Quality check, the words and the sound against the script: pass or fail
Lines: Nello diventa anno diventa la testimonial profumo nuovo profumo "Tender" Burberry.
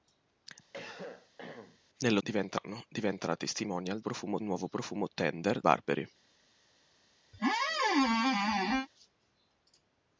fail